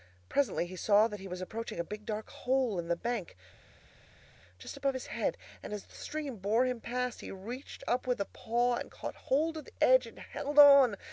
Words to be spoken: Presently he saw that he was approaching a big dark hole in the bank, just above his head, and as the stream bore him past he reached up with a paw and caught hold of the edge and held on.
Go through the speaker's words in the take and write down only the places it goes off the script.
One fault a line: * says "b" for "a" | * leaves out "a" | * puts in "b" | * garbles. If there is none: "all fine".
all fine